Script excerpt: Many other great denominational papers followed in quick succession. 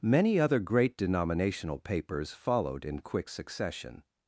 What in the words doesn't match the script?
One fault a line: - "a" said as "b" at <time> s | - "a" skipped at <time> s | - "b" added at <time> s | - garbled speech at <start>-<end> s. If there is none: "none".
none